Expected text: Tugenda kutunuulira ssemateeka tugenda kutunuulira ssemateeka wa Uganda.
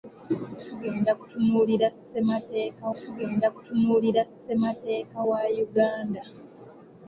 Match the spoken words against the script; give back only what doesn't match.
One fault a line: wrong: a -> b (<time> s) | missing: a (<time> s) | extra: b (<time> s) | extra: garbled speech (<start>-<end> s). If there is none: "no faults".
no faults